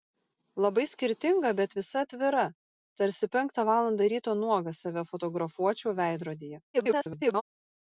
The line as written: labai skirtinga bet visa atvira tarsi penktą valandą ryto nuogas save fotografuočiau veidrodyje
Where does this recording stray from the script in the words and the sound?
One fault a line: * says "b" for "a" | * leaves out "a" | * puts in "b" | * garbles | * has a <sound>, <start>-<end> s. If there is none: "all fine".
* garbles